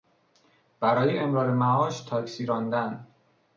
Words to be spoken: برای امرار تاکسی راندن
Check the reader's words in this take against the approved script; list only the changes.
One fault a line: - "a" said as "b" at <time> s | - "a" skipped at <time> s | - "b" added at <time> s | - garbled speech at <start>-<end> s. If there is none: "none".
- "معاش" added at 1.5 s